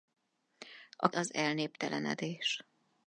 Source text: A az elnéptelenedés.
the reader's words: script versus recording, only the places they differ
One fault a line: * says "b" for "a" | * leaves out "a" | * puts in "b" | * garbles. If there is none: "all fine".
all fine